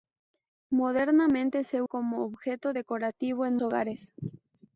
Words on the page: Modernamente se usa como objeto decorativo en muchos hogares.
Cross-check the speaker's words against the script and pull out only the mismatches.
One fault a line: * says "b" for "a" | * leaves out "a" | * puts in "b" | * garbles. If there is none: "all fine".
* leaves out "usa"
* leaves out "muchos"